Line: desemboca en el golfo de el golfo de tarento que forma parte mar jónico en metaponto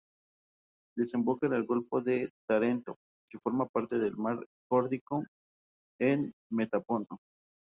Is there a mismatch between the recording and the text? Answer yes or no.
yes